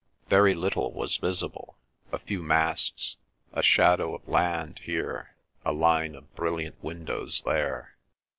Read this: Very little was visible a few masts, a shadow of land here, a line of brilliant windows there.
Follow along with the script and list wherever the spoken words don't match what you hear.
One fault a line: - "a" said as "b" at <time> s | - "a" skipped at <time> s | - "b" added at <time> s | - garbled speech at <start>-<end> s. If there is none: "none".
none